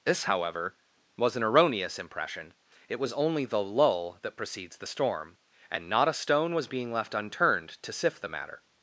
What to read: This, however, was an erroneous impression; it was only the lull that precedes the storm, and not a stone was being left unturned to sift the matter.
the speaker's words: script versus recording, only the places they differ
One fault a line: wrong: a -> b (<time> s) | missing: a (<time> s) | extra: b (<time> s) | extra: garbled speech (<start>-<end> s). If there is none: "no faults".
no faults